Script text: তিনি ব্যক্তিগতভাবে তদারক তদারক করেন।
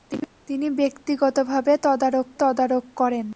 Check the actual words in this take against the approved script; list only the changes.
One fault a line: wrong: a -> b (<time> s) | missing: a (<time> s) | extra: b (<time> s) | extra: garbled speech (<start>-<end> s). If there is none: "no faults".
no faults